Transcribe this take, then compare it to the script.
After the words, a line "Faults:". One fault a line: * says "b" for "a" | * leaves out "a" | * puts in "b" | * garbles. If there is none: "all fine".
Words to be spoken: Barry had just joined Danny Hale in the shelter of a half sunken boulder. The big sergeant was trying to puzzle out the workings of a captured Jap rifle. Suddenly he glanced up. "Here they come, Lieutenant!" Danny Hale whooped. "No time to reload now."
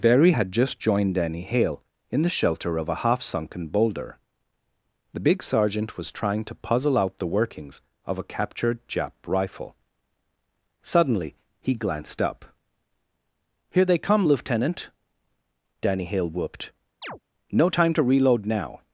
Barry had just joined Danny Hale in the shelter of a half sunken boulder. The big sergeant was trying to puzzle out the workings of a captured Jap rifle. Suddenly he glanced up. "Here they come, Lieutenant!" Danny Hale whooped. "No time to reload now."
Faults:
all fine